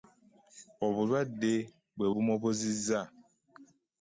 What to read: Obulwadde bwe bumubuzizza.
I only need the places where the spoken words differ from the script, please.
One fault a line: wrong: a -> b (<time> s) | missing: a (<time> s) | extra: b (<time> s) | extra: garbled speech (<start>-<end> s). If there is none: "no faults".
no faults